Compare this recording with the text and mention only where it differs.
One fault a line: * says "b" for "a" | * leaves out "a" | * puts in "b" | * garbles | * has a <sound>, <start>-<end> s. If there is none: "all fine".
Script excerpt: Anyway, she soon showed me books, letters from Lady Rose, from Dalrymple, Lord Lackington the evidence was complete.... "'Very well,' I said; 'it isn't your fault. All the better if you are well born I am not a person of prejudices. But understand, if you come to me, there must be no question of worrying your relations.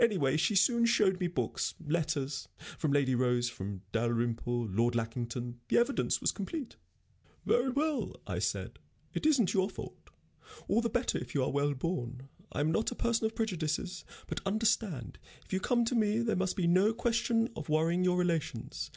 all fine